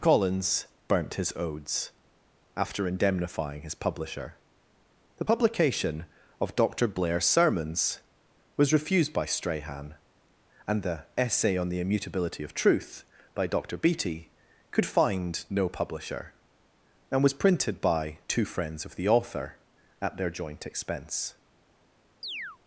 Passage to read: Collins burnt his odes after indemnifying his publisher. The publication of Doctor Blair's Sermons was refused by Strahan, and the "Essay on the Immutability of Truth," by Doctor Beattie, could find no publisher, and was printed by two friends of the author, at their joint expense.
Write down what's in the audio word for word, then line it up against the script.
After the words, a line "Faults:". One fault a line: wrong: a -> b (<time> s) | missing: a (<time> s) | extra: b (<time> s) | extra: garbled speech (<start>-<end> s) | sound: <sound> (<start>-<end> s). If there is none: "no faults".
Collins burnt his odes after indemnifying his publisher. The publication of Doctor Blair's Sermons was refused by Strahan, and the "Essay on the Immutability of Truth," by Doctor Beattie, could find no publisher, and was printed by two friends of the author, at their joint expense.
Faults:
sound: chirp (22.2-22.6 s)